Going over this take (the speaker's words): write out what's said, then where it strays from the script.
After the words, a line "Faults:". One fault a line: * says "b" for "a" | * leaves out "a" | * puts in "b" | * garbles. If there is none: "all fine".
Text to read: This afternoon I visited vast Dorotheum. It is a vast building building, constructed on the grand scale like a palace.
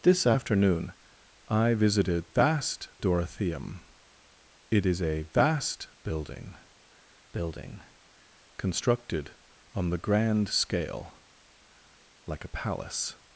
This afternoon I visited vast Dorotheum. It is a vast building building, constructed on the grand scale like a palace.
Faults:
all fine